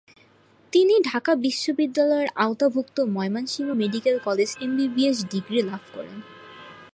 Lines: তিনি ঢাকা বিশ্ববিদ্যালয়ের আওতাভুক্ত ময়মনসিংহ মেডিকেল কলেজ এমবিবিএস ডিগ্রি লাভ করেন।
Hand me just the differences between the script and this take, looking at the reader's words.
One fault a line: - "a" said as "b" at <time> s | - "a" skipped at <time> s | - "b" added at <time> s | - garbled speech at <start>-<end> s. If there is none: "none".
none